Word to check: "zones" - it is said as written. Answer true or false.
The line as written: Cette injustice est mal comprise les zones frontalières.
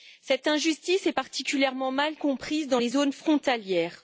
true